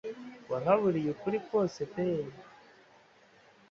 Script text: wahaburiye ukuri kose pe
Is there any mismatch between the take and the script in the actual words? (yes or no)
no